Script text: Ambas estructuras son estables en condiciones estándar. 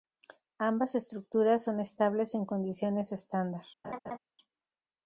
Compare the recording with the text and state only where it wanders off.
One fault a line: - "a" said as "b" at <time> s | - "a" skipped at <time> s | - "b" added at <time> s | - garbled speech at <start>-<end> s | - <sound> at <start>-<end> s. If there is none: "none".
- laugh at 3.8-4.2 s